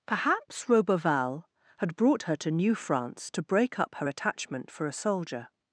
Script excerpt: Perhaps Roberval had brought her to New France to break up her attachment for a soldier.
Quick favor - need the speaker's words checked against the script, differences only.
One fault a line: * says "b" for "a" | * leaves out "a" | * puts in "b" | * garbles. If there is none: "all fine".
all fine